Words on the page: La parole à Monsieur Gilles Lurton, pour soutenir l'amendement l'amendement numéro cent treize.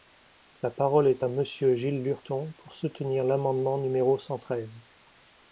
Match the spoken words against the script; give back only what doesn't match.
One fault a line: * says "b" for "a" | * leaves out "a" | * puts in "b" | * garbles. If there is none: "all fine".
* puts in "est"
* leaves out "l'amendement"